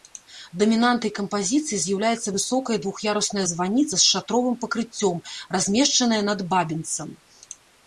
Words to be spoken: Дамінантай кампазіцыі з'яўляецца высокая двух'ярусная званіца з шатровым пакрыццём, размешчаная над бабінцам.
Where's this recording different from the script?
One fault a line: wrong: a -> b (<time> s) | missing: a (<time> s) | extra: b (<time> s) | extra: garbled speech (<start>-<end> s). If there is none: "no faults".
no faults